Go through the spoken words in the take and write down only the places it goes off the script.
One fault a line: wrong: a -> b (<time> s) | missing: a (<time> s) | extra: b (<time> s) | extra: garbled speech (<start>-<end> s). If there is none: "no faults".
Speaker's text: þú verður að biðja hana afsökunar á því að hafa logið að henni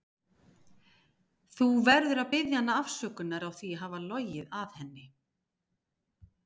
no faults